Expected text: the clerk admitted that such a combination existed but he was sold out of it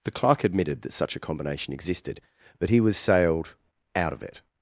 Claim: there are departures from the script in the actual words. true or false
true